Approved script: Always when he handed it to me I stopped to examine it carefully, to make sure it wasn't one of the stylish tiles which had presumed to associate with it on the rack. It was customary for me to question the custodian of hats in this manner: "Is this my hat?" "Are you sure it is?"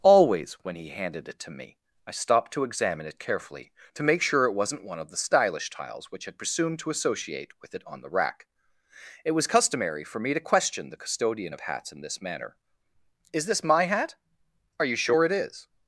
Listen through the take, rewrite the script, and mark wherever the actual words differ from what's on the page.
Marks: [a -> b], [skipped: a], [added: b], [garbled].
Always when he handed it to me I stopped to examine it carefully, to make sure it wasn't one of the stylish tiles which had presumed to associate with it on the rack. It was customary for me to question the custodian of hats in this manner: "Is this my hat?" "Are you sure it is?"